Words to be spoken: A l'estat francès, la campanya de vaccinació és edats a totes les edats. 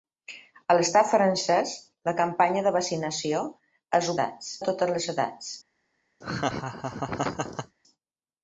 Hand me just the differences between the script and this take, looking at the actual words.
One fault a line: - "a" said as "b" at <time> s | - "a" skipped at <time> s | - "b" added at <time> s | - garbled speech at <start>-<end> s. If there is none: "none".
none